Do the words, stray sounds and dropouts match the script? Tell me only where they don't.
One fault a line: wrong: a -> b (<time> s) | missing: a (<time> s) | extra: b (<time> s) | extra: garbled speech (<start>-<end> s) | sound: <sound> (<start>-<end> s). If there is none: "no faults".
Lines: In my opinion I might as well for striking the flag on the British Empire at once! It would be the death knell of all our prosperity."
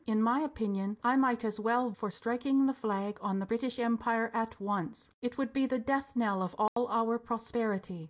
sound: dropout (6.7-6.8 s)